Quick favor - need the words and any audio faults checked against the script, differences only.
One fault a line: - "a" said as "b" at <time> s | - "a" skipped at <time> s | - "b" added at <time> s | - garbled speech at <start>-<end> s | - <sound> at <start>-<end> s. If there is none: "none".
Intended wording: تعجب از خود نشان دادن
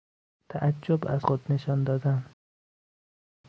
none